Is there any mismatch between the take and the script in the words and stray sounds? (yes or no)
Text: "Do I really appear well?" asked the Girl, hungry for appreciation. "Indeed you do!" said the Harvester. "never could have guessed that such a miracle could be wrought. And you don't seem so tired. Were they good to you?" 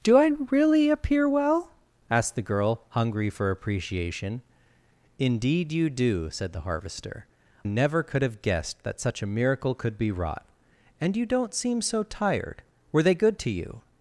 no